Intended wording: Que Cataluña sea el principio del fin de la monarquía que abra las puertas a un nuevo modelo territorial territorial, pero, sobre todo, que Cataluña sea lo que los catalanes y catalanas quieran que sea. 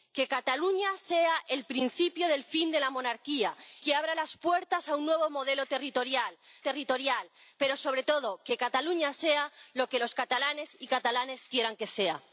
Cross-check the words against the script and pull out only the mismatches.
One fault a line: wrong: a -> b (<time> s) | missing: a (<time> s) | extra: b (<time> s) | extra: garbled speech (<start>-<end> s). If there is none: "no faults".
no faults